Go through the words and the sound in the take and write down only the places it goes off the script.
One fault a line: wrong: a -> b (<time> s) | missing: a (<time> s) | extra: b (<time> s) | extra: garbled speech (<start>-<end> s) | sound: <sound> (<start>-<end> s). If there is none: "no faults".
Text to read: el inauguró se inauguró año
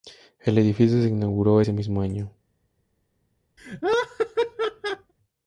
wrong: inauguró -> edificio (0.6 s)
extra: ese mismo (1.6 s)
sound: laugh (3.6-5.1 s)